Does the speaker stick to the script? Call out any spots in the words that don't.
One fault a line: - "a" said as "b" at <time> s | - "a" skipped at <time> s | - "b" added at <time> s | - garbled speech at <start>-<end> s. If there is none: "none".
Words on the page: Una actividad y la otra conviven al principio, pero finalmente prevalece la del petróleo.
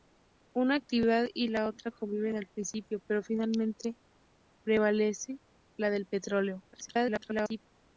- garbled speech at 6.7-7.6 s